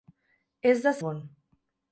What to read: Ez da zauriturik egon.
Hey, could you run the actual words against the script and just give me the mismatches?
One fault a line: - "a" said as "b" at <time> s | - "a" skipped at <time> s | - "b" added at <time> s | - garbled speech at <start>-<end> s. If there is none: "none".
- "zauriturik" skipped at 0.9 s